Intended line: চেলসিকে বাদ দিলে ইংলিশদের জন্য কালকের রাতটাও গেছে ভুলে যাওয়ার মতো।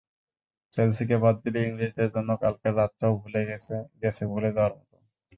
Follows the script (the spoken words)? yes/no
yes